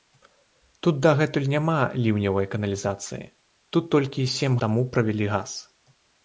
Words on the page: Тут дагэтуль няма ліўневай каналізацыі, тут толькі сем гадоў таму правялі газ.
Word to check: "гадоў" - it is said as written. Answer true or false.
false